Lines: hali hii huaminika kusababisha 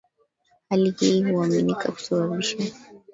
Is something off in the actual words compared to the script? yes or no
no